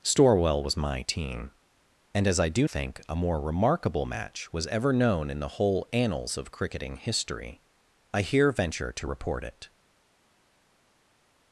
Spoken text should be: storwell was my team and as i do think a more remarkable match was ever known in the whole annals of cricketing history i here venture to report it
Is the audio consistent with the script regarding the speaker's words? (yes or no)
yes